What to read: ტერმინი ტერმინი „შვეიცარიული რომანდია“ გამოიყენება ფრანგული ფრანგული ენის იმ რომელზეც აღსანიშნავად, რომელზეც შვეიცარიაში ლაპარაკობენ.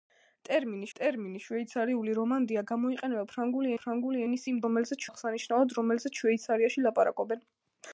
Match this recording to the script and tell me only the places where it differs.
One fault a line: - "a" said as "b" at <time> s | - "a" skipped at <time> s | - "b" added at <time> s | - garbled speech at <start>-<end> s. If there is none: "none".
none